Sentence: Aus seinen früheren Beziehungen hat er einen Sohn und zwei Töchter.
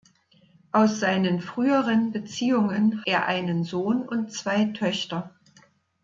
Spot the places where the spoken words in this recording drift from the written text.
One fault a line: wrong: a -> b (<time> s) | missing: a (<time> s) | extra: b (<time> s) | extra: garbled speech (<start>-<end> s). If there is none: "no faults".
missing: hat (3.0 s)